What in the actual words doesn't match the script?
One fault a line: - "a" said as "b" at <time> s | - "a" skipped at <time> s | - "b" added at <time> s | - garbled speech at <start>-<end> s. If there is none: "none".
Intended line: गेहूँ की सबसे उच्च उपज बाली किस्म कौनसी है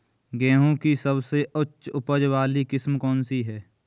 none